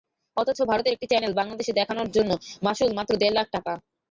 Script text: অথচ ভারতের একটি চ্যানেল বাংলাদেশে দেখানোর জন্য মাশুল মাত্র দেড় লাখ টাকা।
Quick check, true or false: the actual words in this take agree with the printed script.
true